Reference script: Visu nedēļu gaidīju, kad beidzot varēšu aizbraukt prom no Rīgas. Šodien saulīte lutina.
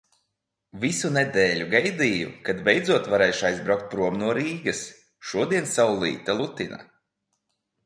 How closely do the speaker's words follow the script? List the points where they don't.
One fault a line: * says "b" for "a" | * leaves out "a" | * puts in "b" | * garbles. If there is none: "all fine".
all fine